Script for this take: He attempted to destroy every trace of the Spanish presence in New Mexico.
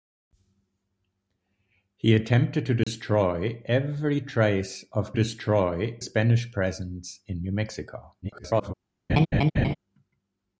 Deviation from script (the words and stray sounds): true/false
true